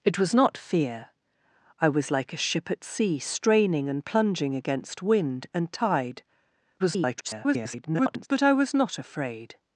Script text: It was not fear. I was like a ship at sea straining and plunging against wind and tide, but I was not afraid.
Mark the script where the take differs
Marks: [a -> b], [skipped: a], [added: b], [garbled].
It was not fear. I was like a ship at sea straining and plunging against wind and tide, [garbled] but I was not afraid.